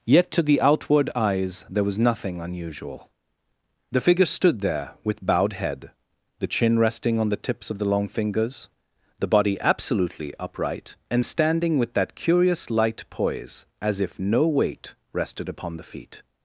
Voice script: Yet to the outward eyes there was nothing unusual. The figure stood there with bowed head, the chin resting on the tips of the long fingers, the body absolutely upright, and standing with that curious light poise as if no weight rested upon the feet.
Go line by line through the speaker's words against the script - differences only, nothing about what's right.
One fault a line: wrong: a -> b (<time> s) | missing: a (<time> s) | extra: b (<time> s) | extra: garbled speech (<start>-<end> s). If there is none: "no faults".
no faults